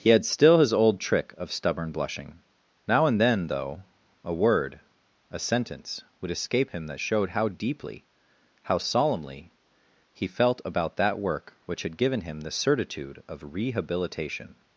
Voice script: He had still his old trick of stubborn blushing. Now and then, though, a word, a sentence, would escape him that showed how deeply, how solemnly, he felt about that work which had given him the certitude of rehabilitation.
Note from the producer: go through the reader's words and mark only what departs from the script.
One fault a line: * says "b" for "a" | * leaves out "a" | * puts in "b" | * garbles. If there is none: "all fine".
all fine